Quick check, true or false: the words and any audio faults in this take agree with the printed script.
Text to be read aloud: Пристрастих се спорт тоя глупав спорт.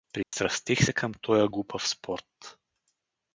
false